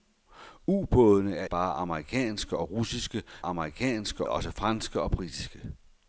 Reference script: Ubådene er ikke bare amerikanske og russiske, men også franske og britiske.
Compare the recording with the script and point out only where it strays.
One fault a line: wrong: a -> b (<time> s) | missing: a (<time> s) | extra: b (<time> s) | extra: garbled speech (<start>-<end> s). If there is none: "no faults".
missing: ikke (1.4 s)
wrong: men -> amerikanske (3.4 s)